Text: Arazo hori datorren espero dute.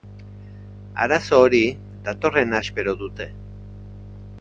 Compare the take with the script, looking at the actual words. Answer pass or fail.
pass